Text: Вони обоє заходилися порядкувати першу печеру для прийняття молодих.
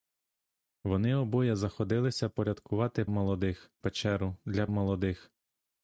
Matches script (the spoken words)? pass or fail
fail